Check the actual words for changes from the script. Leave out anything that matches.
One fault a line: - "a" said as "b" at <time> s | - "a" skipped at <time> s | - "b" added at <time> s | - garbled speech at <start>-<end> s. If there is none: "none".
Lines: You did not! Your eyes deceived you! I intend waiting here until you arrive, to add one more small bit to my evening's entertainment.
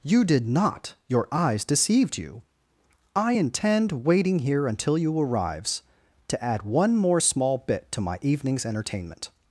- "arrive" said as "arrives" at 5.2 s